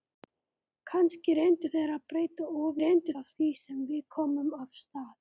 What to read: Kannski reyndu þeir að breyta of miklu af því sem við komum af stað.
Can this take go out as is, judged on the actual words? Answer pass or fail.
fail